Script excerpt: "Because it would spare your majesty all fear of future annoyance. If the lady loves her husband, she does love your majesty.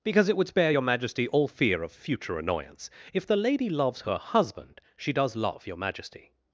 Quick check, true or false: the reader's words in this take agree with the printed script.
true